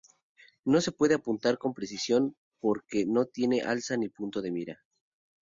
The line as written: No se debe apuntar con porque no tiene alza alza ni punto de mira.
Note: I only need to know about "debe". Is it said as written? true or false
false